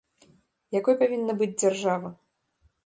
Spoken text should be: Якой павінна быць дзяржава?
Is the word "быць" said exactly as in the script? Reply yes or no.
yes